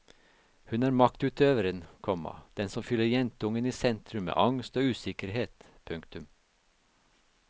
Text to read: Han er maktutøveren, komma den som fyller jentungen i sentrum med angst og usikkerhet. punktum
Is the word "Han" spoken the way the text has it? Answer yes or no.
no